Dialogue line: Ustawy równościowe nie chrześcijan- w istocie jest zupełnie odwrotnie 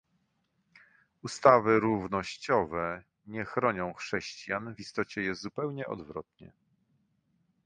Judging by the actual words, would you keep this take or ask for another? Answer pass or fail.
fail